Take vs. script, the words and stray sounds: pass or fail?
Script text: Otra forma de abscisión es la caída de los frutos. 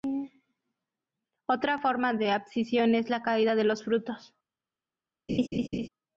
fail